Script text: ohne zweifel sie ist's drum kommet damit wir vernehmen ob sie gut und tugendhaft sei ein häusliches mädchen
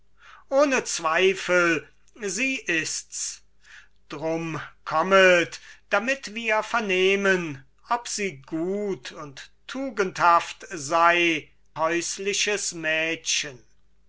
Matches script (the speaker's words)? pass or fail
fail